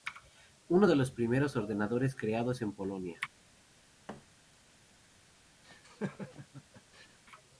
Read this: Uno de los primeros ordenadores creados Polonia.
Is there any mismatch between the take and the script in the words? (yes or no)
yes